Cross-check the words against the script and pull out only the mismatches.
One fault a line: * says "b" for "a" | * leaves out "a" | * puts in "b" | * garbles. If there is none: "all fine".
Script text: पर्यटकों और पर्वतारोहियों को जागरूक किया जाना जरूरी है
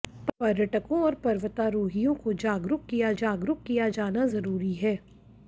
* puts in "जागरूक किया"